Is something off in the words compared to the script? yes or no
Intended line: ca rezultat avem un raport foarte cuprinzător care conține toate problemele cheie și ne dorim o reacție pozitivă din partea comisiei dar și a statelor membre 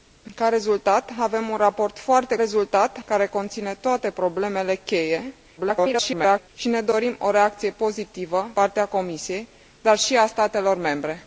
yes